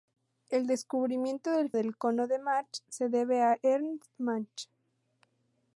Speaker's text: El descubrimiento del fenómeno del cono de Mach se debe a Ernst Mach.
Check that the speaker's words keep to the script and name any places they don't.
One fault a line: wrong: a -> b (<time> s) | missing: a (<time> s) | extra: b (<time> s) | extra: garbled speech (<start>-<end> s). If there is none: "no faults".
missing: fenómeno (1.7 s)